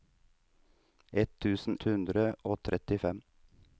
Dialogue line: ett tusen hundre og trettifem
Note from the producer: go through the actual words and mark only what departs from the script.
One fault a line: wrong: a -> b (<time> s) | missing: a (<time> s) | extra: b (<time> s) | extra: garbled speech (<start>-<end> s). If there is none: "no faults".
no faults